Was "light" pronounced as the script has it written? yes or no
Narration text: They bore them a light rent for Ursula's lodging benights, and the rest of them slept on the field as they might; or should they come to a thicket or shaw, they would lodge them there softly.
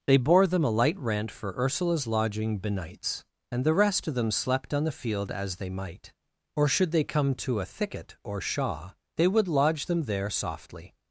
yes